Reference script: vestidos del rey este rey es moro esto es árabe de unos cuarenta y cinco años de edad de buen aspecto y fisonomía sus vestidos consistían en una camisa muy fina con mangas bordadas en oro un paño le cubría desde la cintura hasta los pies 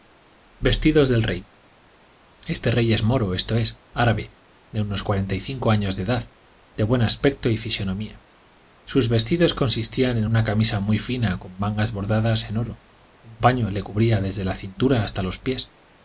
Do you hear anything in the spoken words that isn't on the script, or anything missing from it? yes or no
no